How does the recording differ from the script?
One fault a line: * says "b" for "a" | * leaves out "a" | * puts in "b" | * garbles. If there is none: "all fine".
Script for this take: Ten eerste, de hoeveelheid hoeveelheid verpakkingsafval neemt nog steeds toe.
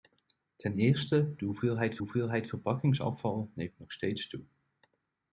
all fine